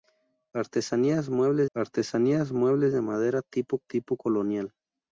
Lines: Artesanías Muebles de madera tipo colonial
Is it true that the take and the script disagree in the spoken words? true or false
true